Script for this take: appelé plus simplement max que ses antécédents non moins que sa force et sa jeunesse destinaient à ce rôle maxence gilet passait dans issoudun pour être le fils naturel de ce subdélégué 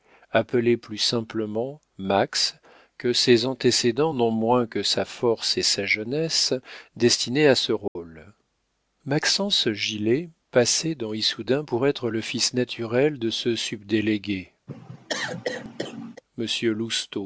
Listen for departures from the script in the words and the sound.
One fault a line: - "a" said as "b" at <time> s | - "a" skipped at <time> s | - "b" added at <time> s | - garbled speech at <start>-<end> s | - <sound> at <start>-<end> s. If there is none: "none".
- dropout at 7.9-8.0 s
- cough at 14.7-16.2 s